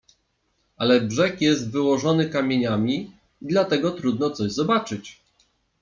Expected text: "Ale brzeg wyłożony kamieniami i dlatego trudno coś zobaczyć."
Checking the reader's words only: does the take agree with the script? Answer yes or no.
no